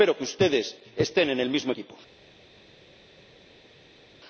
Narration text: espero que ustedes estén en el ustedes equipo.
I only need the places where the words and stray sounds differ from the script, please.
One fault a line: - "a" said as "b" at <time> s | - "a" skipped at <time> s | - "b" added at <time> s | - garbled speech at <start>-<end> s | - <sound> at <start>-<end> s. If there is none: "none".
- "ustedes" said as "mismo" at 1.5 s